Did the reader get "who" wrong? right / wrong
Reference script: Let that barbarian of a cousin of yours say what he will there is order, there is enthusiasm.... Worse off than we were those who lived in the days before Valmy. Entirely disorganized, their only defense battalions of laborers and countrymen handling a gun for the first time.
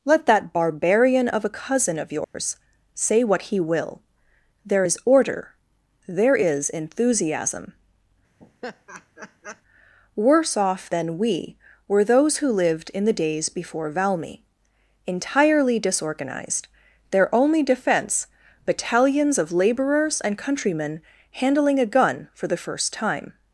right